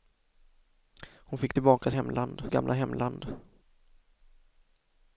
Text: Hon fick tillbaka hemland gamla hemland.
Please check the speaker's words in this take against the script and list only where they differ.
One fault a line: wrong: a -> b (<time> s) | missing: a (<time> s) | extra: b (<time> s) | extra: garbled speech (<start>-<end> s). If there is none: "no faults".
no faults